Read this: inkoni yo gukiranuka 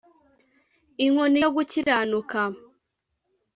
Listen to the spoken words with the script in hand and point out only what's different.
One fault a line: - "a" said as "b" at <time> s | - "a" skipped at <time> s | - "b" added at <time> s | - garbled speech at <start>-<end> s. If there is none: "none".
none